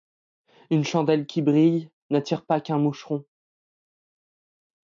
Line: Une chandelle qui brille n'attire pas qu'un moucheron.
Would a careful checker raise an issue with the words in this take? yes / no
no